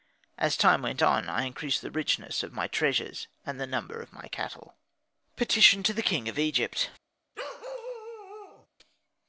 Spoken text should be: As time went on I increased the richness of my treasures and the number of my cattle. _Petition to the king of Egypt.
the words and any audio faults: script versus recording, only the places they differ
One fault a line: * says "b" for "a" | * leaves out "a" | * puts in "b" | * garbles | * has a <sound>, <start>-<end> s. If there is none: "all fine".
* has a bark, 7.3-8.7 s